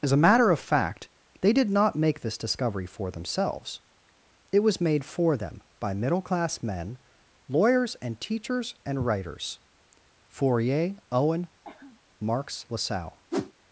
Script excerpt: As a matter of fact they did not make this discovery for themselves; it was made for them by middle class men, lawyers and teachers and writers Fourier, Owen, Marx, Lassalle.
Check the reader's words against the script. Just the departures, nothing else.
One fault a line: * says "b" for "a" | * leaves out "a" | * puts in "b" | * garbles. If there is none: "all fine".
all fine